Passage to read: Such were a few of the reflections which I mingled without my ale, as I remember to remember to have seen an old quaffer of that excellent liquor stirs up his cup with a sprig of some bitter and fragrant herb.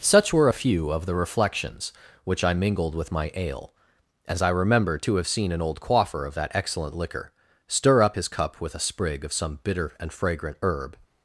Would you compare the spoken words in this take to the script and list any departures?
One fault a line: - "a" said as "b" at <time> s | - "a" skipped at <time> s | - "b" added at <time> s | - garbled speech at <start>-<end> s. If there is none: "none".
- "without" said as "with" at 2.9 s
- "remember to" skipped at 5.2 s
- "stirs" said as "stir" at 7.7 s